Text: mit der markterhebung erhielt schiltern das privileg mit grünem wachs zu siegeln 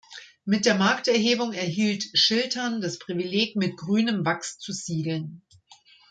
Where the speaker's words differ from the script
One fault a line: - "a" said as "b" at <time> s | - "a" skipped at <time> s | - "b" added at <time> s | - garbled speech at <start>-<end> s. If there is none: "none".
none